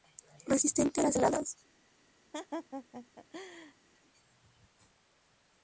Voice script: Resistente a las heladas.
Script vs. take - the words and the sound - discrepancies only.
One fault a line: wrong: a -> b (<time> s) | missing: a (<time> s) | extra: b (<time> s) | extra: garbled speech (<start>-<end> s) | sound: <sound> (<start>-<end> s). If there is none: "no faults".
sound: laugh (2.3-3.7 s)